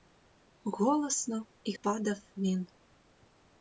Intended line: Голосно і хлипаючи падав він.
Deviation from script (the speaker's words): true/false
true